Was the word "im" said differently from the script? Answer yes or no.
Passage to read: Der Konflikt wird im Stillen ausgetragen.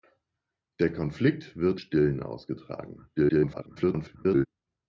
yes